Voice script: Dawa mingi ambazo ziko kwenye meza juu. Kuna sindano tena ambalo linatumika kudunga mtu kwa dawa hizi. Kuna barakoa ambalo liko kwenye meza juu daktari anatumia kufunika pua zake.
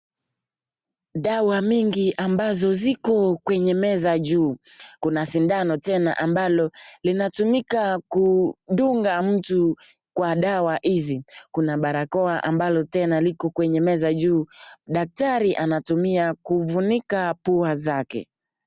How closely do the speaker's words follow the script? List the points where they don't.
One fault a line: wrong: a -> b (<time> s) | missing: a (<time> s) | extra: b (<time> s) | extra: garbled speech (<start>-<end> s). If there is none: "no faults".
extra: tena (12.8 s)